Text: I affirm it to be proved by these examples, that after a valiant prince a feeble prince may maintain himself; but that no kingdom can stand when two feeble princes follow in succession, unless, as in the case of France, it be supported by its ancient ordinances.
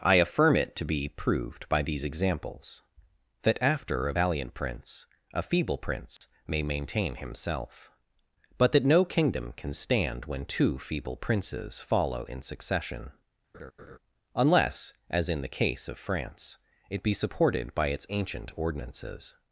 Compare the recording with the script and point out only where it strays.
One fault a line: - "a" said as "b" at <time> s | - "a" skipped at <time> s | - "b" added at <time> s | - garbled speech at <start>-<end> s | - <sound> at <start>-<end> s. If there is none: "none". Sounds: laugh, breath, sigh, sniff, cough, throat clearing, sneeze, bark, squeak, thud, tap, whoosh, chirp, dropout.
- dropout at 6.2-6.2 s
- laugh at 13.5-14.0 s